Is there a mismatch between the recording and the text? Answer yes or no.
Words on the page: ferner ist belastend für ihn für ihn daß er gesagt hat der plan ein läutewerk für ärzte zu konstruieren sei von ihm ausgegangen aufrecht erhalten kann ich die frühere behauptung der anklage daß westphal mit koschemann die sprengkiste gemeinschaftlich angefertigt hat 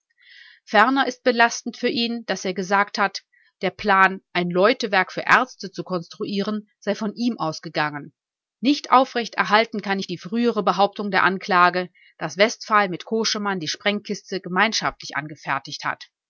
yes